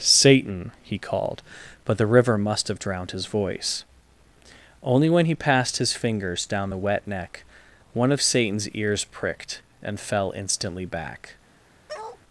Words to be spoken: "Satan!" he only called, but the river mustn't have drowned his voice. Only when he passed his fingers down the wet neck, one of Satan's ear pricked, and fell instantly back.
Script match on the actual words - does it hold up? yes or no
no